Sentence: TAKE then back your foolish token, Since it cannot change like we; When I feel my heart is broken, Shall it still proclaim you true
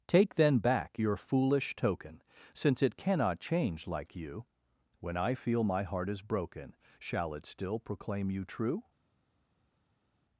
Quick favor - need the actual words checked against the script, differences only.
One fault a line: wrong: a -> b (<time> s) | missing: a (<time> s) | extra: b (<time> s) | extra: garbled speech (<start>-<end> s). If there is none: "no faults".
wrong: we -> you (4.1 s)